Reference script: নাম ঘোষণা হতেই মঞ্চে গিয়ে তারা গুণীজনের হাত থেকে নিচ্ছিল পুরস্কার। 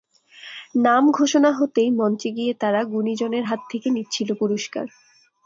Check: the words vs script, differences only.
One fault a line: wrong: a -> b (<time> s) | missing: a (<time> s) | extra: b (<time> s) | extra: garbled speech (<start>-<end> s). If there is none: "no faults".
no faults